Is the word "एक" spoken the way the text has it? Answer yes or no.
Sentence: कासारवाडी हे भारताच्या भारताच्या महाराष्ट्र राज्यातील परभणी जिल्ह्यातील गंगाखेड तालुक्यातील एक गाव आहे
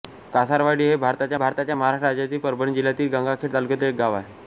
yes